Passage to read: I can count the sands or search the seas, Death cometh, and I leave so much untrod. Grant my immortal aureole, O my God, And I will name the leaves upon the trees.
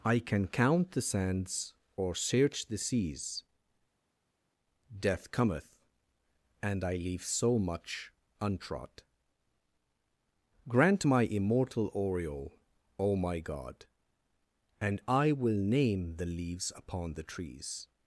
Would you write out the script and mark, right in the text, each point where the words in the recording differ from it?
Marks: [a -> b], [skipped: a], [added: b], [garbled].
I can count the sands or search the seas, Death cometh, and I leave so much untrod. Grant my immortal aureole, O my God, And I will name the leaves upon the trees.